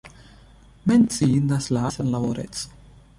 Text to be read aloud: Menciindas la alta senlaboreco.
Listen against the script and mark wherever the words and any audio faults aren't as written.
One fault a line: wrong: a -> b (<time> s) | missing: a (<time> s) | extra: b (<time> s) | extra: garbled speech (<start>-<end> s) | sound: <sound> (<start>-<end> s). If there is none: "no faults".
missing: alta (1.9 s)